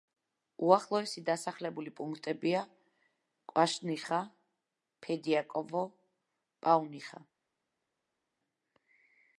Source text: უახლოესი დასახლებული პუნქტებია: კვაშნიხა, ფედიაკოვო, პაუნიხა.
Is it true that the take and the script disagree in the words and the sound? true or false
false